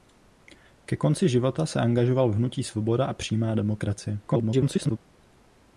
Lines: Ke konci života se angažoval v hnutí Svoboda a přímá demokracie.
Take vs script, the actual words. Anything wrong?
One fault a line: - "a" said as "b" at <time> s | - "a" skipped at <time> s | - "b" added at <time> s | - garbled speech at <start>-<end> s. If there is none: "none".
- garbled speech at 4.3-5.0 s